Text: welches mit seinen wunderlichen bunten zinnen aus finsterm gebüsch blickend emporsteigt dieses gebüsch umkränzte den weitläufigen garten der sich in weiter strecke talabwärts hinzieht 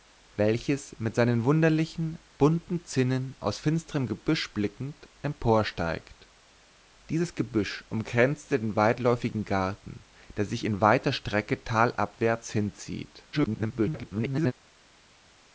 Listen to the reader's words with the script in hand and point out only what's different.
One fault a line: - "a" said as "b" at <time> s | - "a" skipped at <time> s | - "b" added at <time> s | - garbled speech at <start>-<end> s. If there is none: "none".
- garbled speech at 13.3-14.5 s